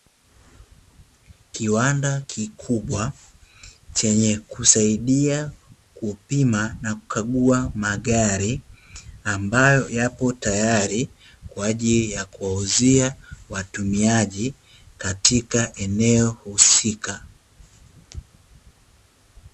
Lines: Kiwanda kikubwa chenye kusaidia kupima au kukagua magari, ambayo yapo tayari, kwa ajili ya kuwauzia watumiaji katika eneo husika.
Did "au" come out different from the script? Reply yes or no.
yes